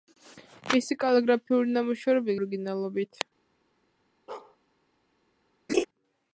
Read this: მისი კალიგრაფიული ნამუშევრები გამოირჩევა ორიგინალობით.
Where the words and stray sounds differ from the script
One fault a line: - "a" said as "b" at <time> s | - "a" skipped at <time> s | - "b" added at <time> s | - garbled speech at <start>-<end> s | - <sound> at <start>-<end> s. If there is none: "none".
- "გამოირჩევა" skipped at 2.4 s
- bark at 4.3-4.6 s
- laugh at 5.7-5.8 s